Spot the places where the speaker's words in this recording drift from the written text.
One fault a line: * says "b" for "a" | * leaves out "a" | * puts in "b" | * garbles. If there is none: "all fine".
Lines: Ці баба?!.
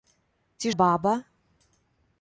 all fine